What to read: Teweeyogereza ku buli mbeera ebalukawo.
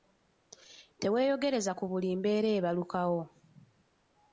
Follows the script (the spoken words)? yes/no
yes